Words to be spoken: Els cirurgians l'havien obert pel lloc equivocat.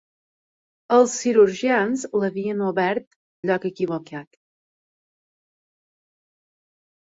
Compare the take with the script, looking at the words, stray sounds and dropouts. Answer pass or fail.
fail